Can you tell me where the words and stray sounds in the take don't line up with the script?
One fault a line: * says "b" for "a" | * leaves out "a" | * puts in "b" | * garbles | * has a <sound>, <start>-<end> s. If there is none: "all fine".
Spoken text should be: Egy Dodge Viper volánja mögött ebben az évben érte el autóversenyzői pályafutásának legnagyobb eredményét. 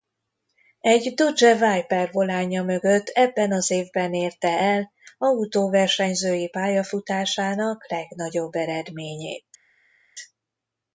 all fine